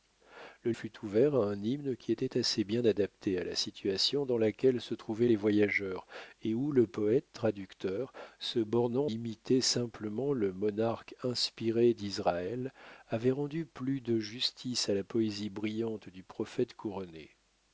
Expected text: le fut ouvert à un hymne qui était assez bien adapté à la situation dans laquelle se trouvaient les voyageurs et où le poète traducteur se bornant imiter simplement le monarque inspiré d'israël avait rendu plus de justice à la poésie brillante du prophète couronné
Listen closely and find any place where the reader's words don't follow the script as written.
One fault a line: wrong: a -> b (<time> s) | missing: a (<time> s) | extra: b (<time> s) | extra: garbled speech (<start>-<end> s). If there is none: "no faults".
no faults